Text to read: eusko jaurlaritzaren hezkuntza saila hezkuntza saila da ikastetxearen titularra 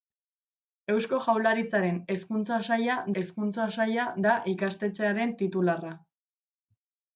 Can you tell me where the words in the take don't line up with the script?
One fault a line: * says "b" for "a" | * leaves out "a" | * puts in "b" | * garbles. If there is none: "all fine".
all fine